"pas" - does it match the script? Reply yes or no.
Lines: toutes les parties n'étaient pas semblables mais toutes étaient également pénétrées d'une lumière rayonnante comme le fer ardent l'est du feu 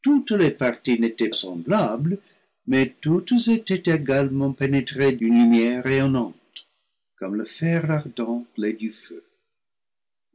no